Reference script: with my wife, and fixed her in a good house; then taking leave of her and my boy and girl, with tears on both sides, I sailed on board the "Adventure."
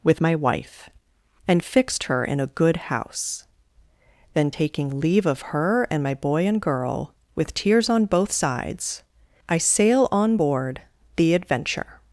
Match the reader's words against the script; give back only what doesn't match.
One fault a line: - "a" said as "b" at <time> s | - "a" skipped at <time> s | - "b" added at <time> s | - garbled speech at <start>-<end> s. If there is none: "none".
- "sailed" said as "sail" at 9.6 s